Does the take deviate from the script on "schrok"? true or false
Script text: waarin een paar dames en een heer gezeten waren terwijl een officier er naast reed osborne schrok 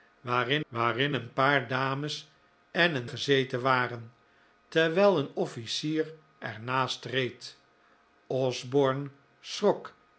false